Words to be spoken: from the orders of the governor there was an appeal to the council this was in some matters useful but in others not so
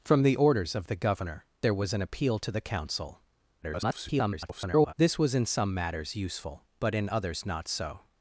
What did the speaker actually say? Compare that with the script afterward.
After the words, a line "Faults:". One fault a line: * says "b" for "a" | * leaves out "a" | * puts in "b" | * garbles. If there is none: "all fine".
from the orders of the governor there was an appeal to the council [garbled] this was in some matters useful but in others not so
Faults:
* garbles